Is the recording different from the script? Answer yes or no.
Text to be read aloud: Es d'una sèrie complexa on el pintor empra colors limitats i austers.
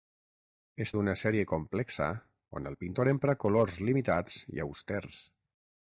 no